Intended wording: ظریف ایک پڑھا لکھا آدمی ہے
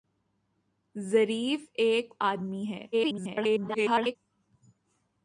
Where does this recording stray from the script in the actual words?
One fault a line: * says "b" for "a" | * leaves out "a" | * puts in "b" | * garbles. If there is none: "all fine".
* leaves out "پڑھا لکھا"
* garbles